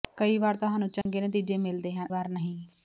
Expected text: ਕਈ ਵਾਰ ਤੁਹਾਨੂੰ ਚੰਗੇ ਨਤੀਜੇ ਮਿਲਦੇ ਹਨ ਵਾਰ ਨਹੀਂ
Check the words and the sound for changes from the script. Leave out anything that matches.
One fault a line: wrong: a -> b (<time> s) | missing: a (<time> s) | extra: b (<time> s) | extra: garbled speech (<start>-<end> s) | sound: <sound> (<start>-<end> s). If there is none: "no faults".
sound: dropout (1.0-1.1 s)